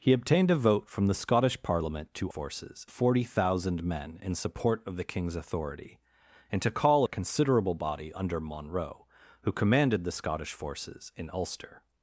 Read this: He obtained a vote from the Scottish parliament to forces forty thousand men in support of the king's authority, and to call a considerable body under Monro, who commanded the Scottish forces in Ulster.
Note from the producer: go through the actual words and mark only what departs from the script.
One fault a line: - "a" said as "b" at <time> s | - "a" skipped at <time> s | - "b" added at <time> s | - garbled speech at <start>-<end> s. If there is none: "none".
none